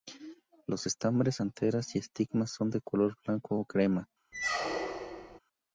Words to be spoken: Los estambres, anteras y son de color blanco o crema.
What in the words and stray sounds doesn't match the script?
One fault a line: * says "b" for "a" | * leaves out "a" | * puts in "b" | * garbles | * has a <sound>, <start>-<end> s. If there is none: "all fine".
* puts in "estigmas"
* has a squeak, 4.3-5.4 s